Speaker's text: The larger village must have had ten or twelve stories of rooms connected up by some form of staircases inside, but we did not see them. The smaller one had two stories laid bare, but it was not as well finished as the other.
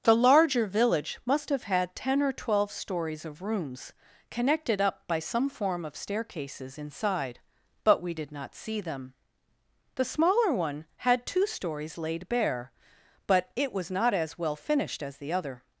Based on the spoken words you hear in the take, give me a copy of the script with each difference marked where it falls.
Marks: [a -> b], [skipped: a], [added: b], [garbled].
The larger village must have had ten or twelve stories of rooms connected up by some form of staircases inside, but we did not see them. The smaller one had two stories laid bare, but it was not as well finished as the other.